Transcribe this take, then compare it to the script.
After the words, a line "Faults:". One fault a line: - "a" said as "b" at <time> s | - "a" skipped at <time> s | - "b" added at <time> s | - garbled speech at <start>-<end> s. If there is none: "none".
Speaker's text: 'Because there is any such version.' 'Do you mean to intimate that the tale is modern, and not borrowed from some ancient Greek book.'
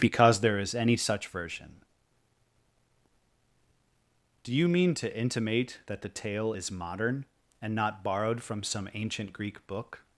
'Because there is any such version.' 'Do you mean to intimate that the tale is modern, and not borrowed from some ancient Greek book.'
Faults:
none